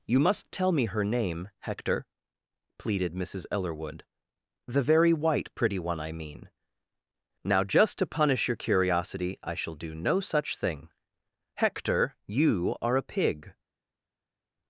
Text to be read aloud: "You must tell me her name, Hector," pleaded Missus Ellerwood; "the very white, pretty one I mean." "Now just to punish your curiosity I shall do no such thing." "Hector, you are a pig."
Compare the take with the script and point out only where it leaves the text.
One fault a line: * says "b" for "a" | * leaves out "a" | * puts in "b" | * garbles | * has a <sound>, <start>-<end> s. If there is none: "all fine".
all fine